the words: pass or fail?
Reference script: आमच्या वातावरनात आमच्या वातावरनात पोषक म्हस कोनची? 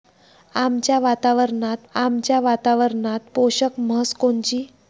pass